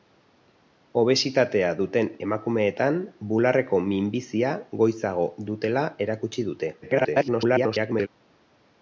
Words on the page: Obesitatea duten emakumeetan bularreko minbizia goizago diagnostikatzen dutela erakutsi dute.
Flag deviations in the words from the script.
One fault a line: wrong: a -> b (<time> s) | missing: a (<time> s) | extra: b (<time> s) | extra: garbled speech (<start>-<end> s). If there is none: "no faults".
missing: diagnostikatzen (5.3 s)
extra: garbled speech (6.8-8.1 s)